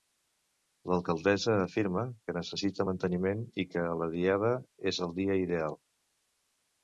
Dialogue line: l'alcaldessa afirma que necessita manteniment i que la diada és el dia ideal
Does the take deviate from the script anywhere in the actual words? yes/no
no